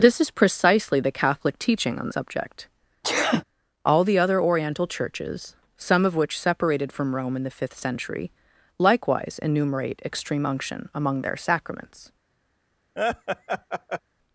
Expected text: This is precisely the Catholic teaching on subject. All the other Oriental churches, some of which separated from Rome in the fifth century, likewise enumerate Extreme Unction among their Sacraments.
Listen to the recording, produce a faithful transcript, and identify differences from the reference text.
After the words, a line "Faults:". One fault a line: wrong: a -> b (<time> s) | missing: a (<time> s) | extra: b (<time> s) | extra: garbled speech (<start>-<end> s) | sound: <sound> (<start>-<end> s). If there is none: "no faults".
This is precisely the Catholic teaching on subject. All the other Oriental churches, some of which separated from Rome in the fifth century, likewise enumerate Extreme Unction among their Sacraments.
Faults:
sound: sneeze (3.0-3.4 s)
sound: laugh (13.0-14.0 s)